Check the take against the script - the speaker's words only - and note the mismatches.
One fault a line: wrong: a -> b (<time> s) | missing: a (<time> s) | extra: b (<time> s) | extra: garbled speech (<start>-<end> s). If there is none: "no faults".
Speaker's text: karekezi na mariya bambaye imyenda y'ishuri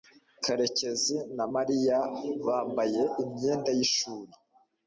no faults